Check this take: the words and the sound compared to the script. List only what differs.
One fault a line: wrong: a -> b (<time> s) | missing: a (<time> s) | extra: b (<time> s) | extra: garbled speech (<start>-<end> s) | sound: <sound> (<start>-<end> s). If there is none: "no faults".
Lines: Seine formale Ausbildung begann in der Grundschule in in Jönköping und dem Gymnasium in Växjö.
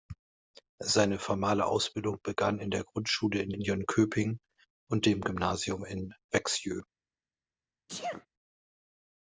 sound: sneeze (7.9-8.3 s)